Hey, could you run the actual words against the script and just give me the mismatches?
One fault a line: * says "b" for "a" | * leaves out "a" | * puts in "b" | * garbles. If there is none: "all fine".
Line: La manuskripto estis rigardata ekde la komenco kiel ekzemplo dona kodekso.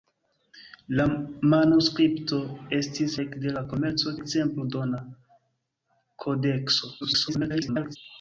* leaves out "rigardata"
* leaves out "kiel"
* garbles